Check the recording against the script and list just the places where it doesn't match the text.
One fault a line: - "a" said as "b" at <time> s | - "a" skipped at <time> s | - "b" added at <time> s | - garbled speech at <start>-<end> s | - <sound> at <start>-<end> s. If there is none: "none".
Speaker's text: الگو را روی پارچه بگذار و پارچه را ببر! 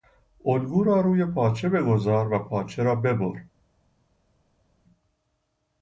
none